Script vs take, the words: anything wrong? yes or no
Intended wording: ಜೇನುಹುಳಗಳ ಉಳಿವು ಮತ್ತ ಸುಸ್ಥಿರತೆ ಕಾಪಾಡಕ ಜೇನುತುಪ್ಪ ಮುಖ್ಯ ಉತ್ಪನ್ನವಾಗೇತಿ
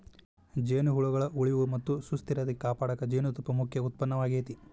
no